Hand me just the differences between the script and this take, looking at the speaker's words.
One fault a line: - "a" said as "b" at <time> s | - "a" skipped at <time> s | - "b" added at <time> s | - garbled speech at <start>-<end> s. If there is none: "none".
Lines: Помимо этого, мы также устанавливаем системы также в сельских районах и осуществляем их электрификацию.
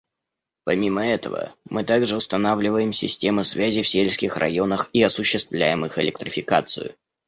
- "также" said as "связи" at 3.4 s